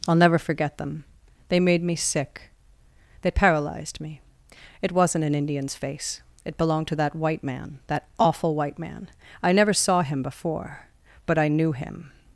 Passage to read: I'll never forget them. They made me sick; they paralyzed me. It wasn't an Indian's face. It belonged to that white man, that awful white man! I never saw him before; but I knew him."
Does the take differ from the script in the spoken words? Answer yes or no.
no